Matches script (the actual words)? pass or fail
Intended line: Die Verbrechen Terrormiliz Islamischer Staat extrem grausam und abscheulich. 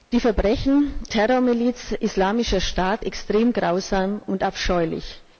pass